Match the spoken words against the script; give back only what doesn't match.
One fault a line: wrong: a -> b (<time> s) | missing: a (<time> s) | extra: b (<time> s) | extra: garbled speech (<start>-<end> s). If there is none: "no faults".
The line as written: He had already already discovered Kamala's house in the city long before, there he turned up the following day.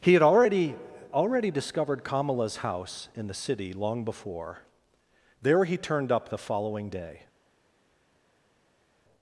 no faults